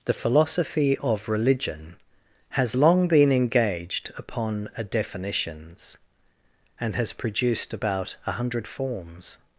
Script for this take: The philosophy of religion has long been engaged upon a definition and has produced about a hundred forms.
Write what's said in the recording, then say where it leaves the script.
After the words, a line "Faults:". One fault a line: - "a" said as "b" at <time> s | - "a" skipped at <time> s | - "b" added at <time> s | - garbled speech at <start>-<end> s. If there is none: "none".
The philosophy of religion has long been engaged upon a definitions and has produced about a hundred forms.
Faults:
- "definition" said as "definitions" at 4.8 s